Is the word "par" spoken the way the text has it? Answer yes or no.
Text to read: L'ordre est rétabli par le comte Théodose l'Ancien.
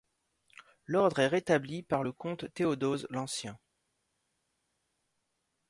yes